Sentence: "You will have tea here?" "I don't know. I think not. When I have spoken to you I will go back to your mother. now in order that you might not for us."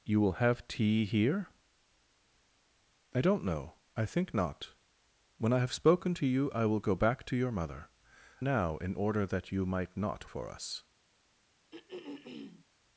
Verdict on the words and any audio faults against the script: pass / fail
fail